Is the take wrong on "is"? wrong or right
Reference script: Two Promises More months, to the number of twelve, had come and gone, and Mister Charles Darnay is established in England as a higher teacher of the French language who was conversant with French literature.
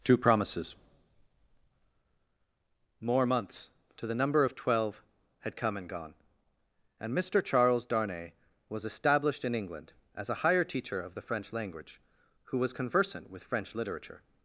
wrong